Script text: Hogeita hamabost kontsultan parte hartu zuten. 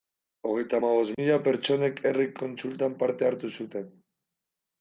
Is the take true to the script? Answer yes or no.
no